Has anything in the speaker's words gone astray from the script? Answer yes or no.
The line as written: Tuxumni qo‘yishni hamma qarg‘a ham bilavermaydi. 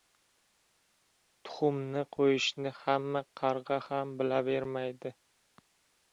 no